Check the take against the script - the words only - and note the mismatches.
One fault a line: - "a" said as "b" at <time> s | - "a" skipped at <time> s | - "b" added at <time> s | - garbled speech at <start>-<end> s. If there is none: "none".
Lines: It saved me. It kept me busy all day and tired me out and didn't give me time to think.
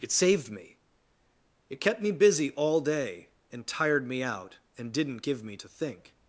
- "time" skipped at 5.6 s